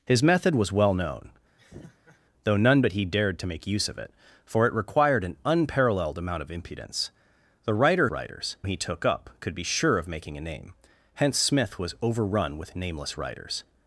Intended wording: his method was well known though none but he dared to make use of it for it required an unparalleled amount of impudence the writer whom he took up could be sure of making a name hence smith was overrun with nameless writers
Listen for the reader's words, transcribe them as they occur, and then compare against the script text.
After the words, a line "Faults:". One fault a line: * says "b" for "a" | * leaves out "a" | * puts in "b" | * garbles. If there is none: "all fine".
his method was well known though none but he dared to make use of it for it required an unparalleled amount of impudence the writer writers he took up could be sure of making a name hence smith was overrun with nameless writers
Faults:
* says "writers" for "whom"